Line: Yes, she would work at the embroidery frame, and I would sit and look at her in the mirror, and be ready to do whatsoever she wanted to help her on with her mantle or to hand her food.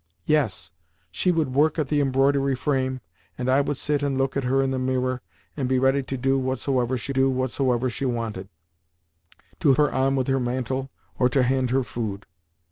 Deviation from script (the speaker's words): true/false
true